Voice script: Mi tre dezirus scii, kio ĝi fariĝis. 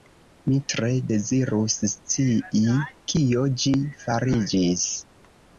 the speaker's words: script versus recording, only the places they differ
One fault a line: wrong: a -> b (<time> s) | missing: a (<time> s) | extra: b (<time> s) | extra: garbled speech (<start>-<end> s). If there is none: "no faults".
no faults